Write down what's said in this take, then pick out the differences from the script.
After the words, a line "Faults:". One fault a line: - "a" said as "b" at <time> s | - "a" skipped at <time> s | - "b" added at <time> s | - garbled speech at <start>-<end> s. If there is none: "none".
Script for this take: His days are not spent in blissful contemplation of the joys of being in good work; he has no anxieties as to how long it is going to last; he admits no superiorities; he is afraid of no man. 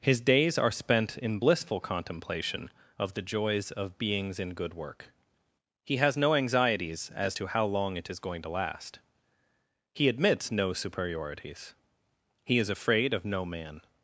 His days are spent in blissful contemplation of the joys of beings in good work; he has no anxieties as to how long it is going to last; he admits no superiorities; he is afraid of no man.
Faults:
- "not" skipped at 0.7 s
- "being" said as "beings" at 4.0 s